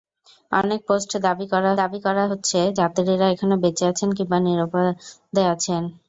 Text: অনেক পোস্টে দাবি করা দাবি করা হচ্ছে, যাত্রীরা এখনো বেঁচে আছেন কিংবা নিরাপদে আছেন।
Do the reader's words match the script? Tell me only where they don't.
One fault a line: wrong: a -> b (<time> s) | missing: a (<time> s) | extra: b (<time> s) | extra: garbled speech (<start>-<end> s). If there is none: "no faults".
no faults